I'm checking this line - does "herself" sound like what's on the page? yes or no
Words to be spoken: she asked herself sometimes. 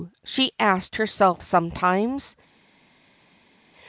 yes